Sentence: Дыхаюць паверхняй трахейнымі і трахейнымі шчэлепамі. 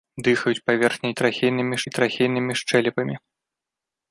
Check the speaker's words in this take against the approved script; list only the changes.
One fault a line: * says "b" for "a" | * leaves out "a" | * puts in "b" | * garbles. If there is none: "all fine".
all fine